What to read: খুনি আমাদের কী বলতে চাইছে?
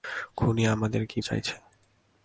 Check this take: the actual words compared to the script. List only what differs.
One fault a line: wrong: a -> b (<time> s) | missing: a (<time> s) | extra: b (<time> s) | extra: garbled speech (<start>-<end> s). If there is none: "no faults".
missing: বলতে (1.2 s)